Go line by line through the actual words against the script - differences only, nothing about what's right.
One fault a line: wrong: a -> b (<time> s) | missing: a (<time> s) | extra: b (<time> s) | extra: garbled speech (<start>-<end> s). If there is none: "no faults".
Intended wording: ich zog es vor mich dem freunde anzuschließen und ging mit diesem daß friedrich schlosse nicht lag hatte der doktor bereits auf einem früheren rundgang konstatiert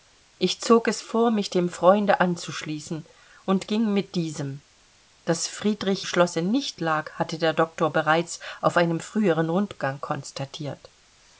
no faults